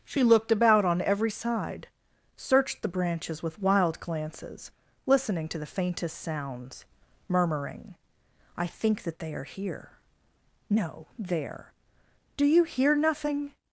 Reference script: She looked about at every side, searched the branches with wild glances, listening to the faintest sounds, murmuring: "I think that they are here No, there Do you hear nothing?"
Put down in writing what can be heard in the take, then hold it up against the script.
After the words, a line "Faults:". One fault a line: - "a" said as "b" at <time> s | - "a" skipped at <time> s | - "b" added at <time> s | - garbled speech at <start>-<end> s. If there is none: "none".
She looked about on every side, searched the branches with wild glances, listening to the faintest sounds, murmuring: "I think that they are here No, there Do you hear nothing?"
Faults:
- "at" said as "on" at 0.8 s